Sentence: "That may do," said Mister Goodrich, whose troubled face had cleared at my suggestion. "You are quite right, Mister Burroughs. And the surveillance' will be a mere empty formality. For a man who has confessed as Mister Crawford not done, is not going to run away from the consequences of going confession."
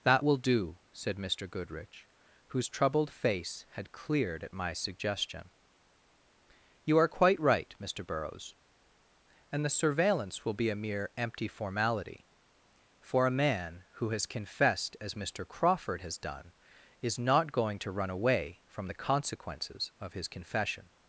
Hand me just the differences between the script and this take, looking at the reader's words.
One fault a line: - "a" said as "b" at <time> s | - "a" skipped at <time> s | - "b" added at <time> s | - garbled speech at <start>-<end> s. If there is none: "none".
- "may" said as "will" at 0.2 s
- "not" said as "has" at 16.0 s
- "going" said as "his" at 20.1 s